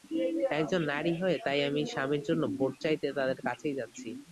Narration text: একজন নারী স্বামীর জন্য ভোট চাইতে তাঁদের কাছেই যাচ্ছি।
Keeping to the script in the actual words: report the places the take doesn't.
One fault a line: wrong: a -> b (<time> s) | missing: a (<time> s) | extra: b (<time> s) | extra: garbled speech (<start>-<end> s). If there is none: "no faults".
extra: হয়ে তাই আমি (1.2 s)